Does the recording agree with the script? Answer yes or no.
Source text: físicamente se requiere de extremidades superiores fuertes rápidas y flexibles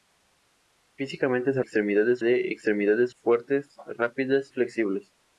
no